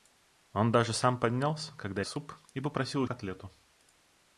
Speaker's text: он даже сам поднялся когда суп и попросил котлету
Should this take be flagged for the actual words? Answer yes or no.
no